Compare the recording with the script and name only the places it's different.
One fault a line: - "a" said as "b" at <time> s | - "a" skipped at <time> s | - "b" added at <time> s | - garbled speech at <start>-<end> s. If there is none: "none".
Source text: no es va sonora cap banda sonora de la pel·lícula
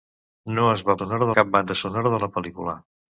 none